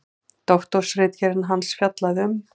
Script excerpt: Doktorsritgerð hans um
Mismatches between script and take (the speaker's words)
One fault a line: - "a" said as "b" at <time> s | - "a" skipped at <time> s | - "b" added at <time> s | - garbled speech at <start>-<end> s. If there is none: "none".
- "fjallaði" added at 1.8 s